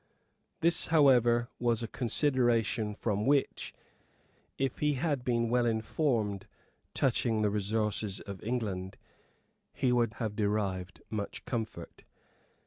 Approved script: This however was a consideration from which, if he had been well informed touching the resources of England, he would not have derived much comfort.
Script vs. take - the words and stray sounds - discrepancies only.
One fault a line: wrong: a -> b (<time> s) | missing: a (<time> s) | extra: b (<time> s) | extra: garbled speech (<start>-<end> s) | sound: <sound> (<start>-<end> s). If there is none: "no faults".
missing: not (10.2 s)